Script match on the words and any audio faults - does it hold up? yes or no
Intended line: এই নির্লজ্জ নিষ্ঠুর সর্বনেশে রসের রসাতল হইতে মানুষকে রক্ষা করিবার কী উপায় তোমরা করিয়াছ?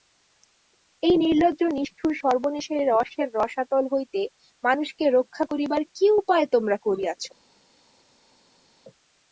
yes